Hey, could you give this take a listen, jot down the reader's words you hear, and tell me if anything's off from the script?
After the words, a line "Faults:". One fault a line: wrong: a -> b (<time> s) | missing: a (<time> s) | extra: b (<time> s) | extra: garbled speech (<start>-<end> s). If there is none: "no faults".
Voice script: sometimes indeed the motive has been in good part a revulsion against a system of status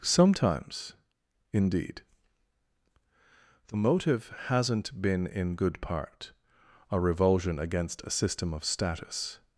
sometimes indeed the motive hasn't been in good part a revulsion against a system of status
Faults:
wrong: has -> hasn't (4.5 s)